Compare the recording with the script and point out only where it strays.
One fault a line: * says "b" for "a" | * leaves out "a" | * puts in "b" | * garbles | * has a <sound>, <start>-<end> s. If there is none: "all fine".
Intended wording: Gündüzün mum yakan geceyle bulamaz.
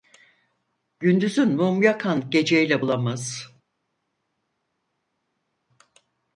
all fine